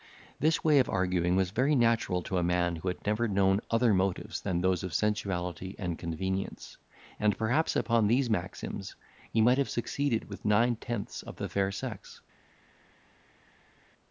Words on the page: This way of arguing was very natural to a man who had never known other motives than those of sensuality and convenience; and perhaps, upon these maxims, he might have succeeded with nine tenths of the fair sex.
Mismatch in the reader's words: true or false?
false